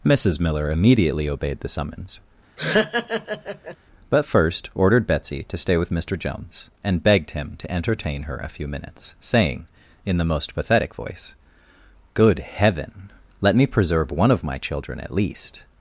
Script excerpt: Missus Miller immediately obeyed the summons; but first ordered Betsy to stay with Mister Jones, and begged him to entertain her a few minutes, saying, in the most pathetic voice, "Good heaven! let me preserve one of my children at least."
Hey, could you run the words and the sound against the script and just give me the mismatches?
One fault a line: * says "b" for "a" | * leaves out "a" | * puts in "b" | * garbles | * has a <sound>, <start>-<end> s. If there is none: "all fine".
* has a laugh, 2.6-3.8 s